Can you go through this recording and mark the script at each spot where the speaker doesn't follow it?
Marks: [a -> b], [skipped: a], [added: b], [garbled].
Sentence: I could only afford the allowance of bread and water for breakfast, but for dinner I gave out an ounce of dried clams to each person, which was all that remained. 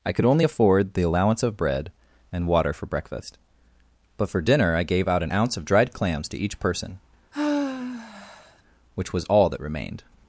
I could only afford the allowance of bread and water for breakfast, but for dinner I gave out an ounce of dried clams to each person, which was all that remained.